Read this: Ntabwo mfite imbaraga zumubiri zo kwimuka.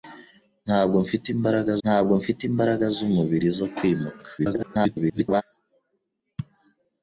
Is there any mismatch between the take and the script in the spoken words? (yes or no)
yes